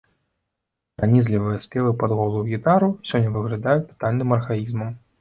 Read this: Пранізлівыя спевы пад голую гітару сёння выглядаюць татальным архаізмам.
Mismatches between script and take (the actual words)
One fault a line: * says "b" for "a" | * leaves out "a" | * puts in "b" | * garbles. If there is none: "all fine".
all fine